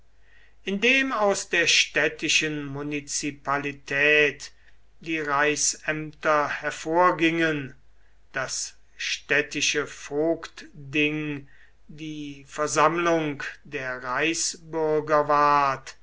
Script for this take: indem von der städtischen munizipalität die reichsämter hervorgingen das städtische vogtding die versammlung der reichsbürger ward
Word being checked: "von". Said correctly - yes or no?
no